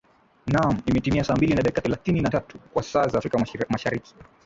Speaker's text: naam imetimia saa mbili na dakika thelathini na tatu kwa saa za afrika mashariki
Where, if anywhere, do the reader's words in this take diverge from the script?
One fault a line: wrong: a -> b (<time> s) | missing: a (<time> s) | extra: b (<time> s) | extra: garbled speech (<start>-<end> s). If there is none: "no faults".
no faults